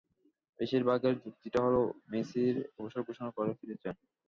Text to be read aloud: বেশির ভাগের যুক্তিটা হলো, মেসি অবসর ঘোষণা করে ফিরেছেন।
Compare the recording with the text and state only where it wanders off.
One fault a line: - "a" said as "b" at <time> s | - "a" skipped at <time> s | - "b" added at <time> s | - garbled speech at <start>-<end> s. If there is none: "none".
none